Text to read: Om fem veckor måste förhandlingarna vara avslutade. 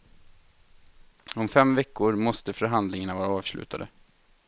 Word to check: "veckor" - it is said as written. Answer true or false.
true